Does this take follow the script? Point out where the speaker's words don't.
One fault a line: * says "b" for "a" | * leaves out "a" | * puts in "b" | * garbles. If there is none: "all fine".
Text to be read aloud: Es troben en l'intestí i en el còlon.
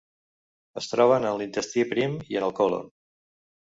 * puts in "prim"